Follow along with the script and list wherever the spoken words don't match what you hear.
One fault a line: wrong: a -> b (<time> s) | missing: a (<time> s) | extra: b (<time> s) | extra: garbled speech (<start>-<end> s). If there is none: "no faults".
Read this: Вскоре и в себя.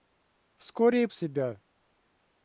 no faults